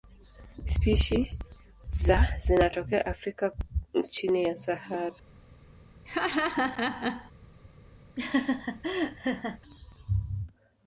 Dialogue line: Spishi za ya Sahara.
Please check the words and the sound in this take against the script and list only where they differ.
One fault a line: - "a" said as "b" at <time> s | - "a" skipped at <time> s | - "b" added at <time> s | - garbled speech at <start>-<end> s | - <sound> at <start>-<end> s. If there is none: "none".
- "zinatokea Afrika chini" added at 2.4 s
- laugh at 6.1-7.3 s
- laugh at 8.2-9.6 s